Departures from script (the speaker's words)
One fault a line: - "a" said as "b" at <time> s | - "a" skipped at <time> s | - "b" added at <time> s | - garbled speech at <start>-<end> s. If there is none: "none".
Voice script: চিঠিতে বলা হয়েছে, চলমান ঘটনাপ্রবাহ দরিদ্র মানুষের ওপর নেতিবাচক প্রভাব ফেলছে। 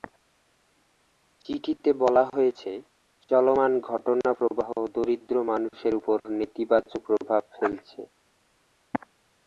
none